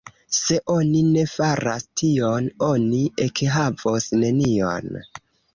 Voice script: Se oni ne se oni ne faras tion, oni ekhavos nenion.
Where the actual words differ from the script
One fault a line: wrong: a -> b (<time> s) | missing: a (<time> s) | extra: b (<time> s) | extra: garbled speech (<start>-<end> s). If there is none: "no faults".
missing: se oni ne (1.2 s)